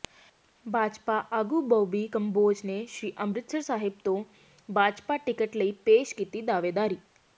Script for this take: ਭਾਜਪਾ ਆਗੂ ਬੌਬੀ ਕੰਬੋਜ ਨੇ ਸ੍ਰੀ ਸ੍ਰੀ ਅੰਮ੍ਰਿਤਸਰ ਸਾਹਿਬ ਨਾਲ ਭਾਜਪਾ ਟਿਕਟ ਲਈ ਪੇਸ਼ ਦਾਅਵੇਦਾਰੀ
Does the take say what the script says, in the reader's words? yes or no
no